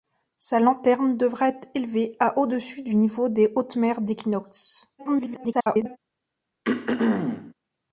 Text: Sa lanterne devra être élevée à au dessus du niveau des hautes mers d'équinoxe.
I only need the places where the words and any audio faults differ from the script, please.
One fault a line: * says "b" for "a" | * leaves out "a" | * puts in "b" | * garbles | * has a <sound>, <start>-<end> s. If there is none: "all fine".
* garbles
* has a throat clearing, 6.6-7.5 s